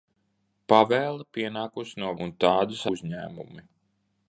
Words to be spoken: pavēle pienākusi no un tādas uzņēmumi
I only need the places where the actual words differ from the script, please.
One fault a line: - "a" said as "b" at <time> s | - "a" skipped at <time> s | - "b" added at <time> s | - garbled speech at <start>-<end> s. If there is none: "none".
none